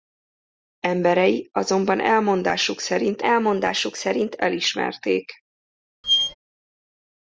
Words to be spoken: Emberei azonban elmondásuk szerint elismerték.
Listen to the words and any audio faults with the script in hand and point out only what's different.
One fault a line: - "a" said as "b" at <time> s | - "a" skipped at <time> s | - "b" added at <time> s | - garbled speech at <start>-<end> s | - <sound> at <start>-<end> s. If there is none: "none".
- "elmondásuk szerint" added at 3.2 s
- squeak at 6.0-6.3 s